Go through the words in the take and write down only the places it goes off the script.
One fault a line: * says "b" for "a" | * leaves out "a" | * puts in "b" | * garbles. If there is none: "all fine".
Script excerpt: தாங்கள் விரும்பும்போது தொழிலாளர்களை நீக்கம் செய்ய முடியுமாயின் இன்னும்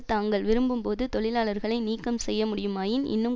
all fine